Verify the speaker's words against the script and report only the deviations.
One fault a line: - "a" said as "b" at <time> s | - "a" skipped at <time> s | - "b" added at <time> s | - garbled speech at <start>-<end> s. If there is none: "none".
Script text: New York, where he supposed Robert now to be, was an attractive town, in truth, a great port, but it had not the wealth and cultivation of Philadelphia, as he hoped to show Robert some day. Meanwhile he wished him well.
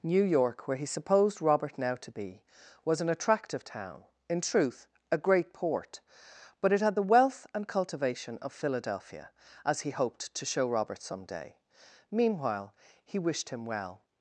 - "not" skipped at 7.0 s